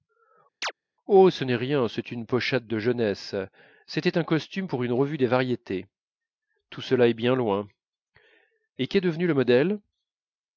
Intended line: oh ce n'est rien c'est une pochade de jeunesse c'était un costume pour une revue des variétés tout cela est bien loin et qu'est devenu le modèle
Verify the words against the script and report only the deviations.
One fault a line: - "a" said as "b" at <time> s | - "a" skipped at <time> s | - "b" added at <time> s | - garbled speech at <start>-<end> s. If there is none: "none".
none